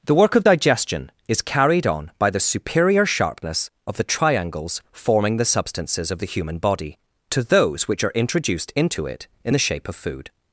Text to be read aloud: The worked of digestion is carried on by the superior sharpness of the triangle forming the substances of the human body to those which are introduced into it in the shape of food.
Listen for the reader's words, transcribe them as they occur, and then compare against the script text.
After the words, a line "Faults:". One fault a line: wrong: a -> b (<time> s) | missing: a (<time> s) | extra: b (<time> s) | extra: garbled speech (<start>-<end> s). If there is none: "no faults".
The work of digestion is carried on by the superior sharpness of the triangles forming the substances of the human body to those which are introduced into it in the shape of food.
Faults:
wrong: worked -> work (0.1 s)
wrong: triangle -> triangles (4.0 s)